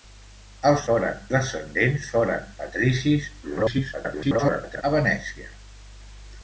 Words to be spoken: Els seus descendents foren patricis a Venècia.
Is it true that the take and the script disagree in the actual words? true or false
true